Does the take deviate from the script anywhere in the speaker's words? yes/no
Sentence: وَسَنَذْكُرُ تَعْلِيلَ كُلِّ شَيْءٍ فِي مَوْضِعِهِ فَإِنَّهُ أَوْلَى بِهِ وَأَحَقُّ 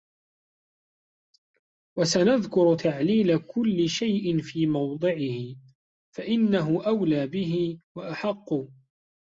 no